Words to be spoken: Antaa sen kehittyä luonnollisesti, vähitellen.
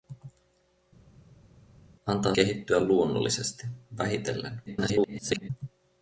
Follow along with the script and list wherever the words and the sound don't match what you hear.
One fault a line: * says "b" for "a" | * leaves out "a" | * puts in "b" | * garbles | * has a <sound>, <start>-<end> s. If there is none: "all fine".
* leaves out "sen"
* garbles